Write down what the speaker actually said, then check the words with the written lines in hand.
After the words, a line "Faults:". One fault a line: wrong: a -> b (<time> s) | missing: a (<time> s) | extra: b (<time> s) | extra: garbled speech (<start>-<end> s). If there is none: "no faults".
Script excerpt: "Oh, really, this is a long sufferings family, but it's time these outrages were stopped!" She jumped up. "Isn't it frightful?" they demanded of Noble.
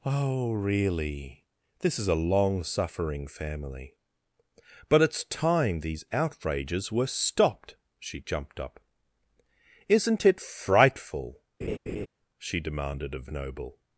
"Oh, really, this is a long suffering family, but it's time these outrages were stopped!" She jumped up. "Isn't it frightful?" she demanded of Noble.
Faults:
wrong: sufferings -> suffering (2.6 s)
wrong: they -> she (12.4 s)